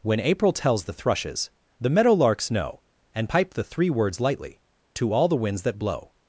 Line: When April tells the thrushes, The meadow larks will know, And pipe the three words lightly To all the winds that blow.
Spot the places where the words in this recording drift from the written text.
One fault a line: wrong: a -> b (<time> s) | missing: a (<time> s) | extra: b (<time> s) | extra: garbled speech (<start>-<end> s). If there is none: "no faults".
missing: will (2.5 s)